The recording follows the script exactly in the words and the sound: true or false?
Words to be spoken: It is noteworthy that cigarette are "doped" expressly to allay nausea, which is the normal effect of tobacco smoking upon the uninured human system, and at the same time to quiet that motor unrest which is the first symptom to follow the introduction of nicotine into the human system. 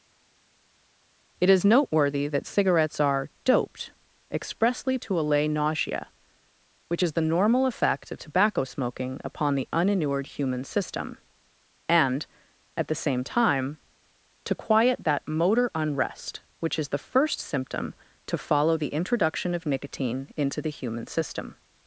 false